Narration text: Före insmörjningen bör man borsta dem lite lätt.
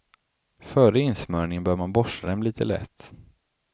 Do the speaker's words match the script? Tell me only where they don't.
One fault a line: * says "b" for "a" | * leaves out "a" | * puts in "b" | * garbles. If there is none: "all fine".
all fine